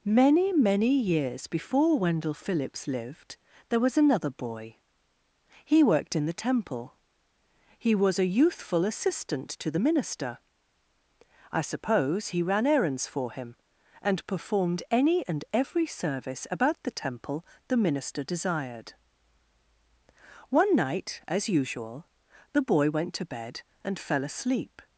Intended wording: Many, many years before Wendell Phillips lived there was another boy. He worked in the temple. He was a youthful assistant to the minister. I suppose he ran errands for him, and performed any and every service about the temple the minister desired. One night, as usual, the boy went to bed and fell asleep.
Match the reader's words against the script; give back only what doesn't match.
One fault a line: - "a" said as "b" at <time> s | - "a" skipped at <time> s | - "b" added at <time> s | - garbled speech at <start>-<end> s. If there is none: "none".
none